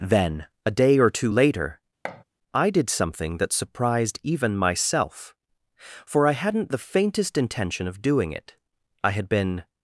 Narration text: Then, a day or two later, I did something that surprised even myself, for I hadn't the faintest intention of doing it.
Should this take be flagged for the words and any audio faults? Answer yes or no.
yes